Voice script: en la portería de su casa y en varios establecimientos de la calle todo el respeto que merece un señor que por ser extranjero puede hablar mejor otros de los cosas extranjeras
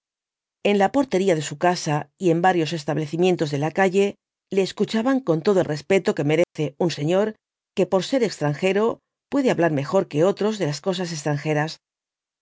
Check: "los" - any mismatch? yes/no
yes